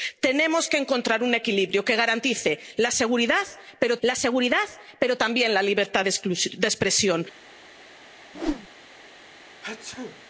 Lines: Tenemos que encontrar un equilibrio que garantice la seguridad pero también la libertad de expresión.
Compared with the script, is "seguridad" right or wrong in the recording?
right